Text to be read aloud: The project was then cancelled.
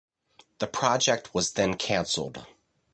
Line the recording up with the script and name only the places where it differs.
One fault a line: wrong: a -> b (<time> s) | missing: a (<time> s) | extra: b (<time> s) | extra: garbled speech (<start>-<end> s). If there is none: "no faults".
no faults